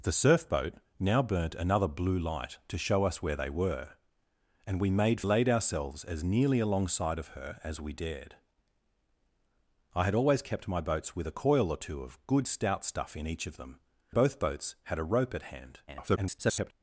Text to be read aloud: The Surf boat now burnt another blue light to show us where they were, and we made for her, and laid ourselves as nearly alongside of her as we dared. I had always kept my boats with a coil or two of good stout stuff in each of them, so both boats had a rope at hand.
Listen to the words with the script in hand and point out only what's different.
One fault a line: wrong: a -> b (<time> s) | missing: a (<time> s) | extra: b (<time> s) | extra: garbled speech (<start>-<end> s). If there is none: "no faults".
missing: for her and (5.2 s)
missing: so (13.8 s)
extra: garbled speech (15.9-16.7 s)